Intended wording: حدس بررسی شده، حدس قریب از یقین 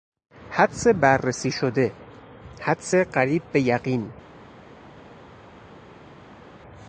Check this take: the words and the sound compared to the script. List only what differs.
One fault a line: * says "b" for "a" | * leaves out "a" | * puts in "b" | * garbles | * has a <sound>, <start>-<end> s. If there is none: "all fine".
* says "به" for "از"